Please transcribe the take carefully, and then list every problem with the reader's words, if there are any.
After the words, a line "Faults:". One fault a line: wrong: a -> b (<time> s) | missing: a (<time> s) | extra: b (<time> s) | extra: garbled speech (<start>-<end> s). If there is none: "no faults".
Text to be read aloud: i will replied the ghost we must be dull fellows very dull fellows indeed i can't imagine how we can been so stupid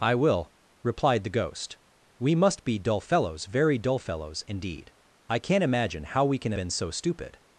i will replied the ghost we must be dull fellows very dull fellows indeed i can't imagine how we can been so stupid
Faults:
no faults